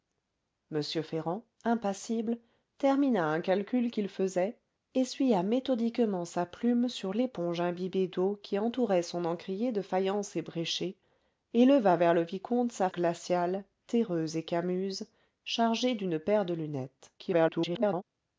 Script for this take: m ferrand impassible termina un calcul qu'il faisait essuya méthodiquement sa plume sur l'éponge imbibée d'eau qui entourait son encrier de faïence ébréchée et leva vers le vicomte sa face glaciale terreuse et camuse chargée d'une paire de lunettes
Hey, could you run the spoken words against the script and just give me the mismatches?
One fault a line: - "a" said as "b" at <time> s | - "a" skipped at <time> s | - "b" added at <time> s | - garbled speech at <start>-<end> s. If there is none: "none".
- "face" skipped at 12.9 s
- garbled speech at 17.2-18.0 s